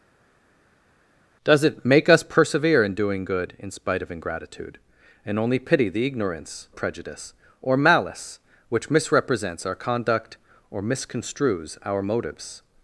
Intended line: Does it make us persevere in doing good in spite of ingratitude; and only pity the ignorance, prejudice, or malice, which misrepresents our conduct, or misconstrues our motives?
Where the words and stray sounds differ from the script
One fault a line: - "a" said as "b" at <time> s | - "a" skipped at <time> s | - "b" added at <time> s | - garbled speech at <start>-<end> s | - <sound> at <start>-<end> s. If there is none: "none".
none